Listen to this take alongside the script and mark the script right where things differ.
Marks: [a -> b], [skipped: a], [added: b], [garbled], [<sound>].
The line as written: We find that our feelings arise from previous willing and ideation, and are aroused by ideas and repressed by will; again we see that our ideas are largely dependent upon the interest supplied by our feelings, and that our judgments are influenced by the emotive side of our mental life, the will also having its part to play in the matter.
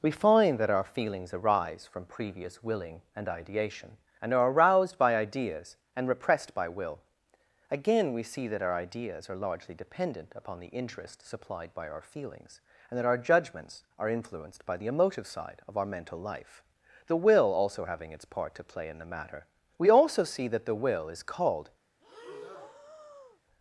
We find that our feelings arise from previous willing and ideation, and are aroused by ideas and repressed by will; again we see that our ideas are largely dependent upon the interest supplied by our feelings, and that our judgments are influenced by the emotive side of our mental life, the will also having its part to play in the matter. [added: We also see that the will is called] [breath]